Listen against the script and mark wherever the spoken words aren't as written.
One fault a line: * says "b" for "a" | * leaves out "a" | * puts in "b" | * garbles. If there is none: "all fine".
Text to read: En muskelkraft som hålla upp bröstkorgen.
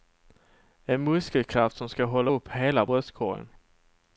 * puts in "ska"
* puts in "hela"